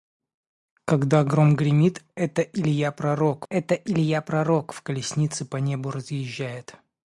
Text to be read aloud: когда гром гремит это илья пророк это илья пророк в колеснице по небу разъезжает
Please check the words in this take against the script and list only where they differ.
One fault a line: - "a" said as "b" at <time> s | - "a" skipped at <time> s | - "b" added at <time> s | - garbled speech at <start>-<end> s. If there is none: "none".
none